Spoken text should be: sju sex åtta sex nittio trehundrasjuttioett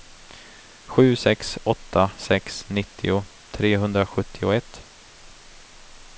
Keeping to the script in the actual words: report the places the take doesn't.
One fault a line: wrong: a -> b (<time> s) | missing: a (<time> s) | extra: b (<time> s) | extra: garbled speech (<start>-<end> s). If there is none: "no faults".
no faults